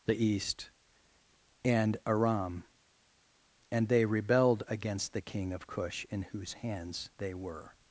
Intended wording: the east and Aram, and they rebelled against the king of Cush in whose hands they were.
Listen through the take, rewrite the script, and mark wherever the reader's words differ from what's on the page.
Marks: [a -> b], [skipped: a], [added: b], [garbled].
the east and Aram, and they rebelled against the king of Cush in whose hands they were.